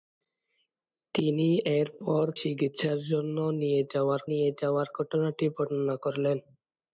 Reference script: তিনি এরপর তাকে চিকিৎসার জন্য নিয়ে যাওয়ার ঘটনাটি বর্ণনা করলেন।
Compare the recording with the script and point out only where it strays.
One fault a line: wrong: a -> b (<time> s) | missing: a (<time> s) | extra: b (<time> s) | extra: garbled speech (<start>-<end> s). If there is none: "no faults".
missing: তাকে (2.2 s)
extra: নিয়ে যাওয়ার (4.3 s)